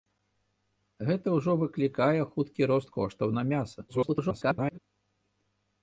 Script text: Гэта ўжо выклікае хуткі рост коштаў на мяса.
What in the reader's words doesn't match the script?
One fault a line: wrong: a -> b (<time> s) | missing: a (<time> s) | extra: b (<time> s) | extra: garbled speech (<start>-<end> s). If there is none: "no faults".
extra: garbled speech (3.9-4.8 s)